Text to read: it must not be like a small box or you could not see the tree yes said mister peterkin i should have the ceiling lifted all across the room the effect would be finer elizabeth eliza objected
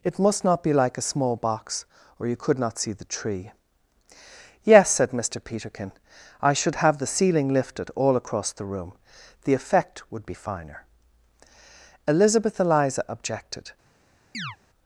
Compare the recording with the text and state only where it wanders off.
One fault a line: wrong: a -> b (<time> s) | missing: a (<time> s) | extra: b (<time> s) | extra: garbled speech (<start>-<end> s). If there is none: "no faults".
no faults